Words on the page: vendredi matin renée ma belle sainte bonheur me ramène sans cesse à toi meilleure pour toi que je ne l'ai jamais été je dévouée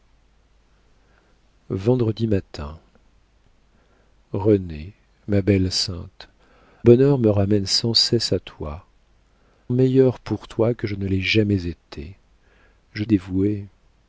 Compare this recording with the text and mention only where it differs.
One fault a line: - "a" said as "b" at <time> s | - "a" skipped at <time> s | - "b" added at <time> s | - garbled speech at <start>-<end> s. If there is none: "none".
none